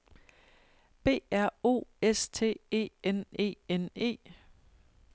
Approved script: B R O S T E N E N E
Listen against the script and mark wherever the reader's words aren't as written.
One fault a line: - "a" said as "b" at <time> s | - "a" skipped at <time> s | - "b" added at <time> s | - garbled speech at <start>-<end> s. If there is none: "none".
none